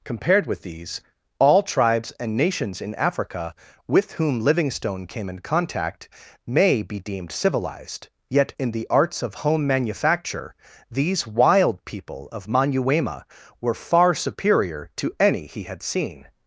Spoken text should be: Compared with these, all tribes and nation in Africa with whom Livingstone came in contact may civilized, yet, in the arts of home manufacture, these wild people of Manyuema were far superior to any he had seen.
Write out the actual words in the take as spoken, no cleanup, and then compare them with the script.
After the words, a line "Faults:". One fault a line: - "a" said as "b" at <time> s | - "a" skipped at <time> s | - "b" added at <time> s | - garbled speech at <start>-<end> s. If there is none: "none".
Compared with these, all tribes and nations in Africa with whom Livingstone came in contact may be deemed civilized, yet, in the arts of home manufacture, these wild people of Manyuema were far superior to any he had seen.
Faults:
- "nation" said as "nations" at 2.4 s
- "be deemed" added at 6.8 s